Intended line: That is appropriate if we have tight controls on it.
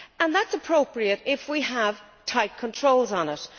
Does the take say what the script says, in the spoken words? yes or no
yes